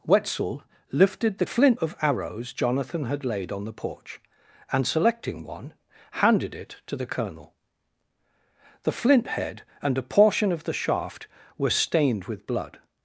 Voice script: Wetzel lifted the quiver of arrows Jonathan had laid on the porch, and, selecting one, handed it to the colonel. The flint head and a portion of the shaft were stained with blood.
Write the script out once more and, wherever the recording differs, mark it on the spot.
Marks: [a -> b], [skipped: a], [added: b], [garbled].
Wetzel lifted the [quiver -> flint] of arrows Jonathan had laid on the porch, and, selecting one, handed it to the colonel. The flint head and a portion of the shaft were stained with blood.